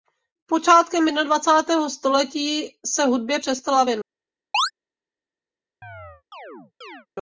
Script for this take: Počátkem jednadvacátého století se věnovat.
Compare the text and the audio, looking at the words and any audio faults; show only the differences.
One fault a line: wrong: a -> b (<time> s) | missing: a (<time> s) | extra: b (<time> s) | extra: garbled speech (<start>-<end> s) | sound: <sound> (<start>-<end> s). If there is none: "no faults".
extra: hudbě přestala (3.0 s)
sound: chirp (4.5-4.7 s)
sound: chirp (5.8-7.1 s)